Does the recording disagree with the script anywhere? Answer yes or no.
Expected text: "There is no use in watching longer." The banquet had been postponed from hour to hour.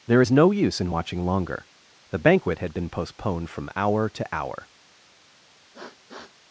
no